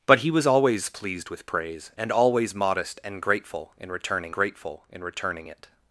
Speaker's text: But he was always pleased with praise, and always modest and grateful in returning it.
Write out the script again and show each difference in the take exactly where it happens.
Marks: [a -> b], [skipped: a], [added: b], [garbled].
But he was always pleased with praise, and always modest and grateful in returning [added: grateful in returning] it.